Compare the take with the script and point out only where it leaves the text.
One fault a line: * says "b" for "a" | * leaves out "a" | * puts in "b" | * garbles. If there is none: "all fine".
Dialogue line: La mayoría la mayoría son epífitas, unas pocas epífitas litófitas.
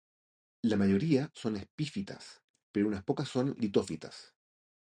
* leaves out "la mayoría"
* puts in "pero"
* says "son" for "epífitas"